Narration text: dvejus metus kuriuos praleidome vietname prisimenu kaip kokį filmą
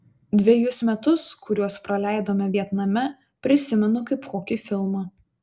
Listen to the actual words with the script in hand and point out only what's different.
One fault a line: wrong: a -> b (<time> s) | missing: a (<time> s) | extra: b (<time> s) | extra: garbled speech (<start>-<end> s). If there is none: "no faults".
no faults